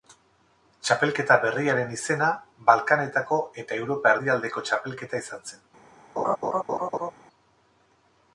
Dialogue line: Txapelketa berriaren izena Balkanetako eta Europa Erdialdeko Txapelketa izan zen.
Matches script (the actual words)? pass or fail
pass